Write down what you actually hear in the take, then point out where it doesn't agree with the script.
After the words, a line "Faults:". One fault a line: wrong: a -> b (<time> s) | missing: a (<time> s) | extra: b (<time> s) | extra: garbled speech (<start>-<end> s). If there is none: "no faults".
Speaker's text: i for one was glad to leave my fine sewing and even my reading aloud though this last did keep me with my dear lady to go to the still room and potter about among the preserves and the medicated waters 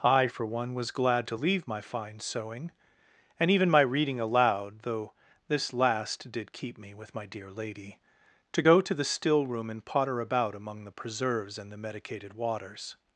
i for one was glad to leave my fine sewing and even my reading aloud though this last did keep me with my dear lady to go to the still room and potter about among the preserves and the medicated waters
Faults:
no faults